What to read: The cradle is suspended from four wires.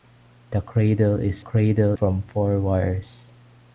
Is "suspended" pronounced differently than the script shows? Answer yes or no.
yes